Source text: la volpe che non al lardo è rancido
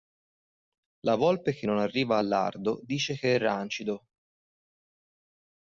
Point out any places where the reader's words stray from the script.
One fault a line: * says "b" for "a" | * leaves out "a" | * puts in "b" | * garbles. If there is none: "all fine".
* puts in "arriva"
* puts in "dice che"